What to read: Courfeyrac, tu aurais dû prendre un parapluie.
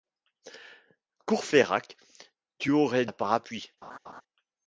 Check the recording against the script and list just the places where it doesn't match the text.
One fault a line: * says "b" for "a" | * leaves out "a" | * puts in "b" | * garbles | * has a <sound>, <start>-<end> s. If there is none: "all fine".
* leaves out "dû prendre"
* has a laugh, 3.8-4.2 s